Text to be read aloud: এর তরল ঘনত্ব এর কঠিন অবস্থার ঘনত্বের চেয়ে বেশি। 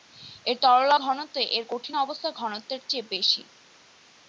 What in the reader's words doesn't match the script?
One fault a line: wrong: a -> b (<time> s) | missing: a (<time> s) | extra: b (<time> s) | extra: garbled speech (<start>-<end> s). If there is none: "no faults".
no faults